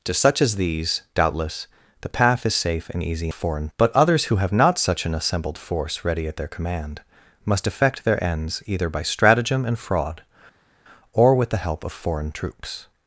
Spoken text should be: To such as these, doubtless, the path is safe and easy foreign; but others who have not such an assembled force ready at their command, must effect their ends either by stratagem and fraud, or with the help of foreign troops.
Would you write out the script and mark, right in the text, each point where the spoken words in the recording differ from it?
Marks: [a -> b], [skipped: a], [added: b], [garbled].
To such as these, doubtless, the path is safe and easy foreign; but others who have not such an assembled force ready at their command, must effect their ends either by stratagem and fraud, or with the help of foreign troops.